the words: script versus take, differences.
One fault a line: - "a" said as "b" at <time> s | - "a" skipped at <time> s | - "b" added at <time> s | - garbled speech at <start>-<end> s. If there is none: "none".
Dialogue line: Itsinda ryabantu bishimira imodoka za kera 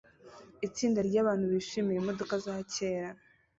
none